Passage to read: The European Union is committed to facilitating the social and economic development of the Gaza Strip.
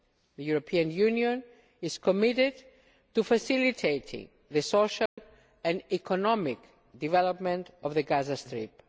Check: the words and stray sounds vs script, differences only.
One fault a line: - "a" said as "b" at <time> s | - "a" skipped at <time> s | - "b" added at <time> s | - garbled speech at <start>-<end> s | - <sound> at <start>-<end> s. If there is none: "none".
- dropout at 5.1-5.2 s